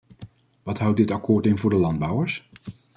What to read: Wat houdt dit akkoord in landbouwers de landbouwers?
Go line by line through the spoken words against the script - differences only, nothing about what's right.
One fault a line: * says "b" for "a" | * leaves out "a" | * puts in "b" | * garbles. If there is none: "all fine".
* says "voor" for "landbouwers"